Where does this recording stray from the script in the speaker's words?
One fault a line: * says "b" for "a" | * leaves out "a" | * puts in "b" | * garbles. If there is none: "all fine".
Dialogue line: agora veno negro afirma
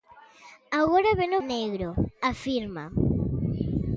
all fine